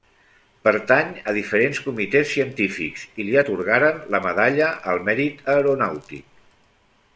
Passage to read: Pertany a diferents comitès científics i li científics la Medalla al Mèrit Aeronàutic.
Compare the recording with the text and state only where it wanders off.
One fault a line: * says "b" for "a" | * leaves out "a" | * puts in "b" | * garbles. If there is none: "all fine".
* says "atorgaren" for "científics"